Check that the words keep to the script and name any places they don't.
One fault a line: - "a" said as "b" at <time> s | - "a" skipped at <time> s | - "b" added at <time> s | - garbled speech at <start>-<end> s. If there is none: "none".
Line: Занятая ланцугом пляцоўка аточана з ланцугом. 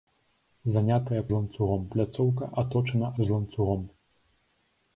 none